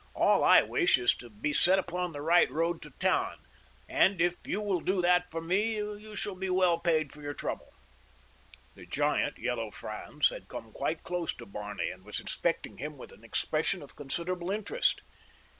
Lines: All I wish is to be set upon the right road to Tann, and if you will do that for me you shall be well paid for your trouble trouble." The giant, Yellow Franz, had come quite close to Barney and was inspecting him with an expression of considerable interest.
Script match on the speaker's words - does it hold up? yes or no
no